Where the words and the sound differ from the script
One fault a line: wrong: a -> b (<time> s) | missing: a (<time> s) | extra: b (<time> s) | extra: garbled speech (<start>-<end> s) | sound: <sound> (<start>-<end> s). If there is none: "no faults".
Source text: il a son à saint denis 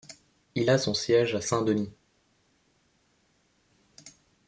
extra: siège (0.9 s)